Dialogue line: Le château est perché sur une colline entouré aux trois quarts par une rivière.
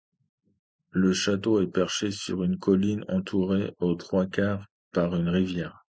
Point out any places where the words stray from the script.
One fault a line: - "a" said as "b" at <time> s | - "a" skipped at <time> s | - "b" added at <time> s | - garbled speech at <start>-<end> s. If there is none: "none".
none